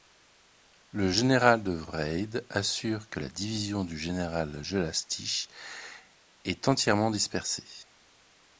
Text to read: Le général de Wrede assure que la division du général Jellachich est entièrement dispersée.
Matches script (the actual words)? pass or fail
pass